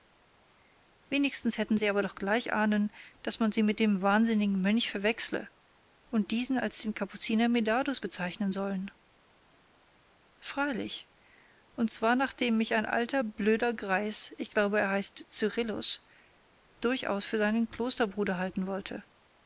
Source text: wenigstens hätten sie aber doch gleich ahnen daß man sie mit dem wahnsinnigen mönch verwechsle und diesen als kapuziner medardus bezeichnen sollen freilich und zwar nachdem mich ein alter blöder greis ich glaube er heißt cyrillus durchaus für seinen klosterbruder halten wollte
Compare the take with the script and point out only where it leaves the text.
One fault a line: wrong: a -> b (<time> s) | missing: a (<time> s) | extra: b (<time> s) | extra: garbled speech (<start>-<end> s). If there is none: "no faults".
extra: den (6.8 s)